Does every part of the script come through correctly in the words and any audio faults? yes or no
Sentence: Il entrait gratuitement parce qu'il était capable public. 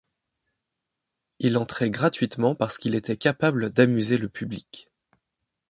no